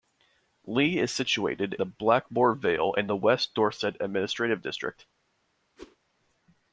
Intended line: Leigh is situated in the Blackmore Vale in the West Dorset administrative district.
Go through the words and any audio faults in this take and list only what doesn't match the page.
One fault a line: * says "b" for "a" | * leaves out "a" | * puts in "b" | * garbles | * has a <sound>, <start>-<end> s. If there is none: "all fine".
* leaves out "in"
* has a whoosh, 5.8-6.0 s